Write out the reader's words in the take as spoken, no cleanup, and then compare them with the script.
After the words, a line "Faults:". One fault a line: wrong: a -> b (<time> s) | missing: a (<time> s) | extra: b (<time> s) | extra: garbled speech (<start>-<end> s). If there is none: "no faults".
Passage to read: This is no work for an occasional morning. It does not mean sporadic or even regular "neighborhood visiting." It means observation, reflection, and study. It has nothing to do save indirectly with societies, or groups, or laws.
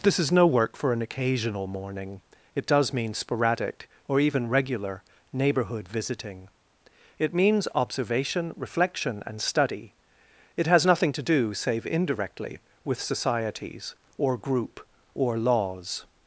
This is no work for an occasional morning. It does mean sporadic or even regular "neighborhood visiting." It means observation, reflection, and study. It has nothing to do save indirectly with societies, or group, or laws.
Faults:
missing: not (2.9 s)
wrong: groups -> group (14.4 s)